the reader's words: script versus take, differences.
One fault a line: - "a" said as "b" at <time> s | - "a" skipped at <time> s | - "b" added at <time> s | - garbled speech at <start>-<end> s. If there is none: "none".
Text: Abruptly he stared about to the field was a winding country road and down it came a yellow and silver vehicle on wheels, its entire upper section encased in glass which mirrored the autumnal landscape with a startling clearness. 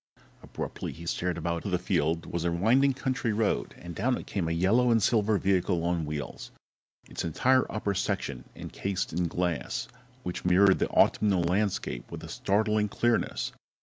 none